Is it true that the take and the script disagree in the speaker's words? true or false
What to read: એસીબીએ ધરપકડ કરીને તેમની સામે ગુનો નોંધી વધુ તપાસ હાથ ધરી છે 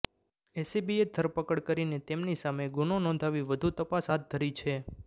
false